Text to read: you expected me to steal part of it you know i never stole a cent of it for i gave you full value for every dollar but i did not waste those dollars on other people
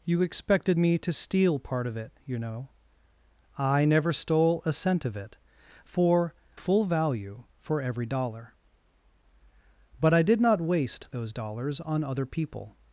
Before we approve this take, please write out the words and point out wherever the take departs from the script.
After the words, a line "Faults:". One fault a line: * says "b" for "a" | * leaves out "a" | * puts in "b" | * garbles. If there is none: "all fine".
you expected me to steal part of it you know i never stole a cent of it for full value for every dollar but i did not waste those dollars on other people
Faults:
* leaves out "i gave you"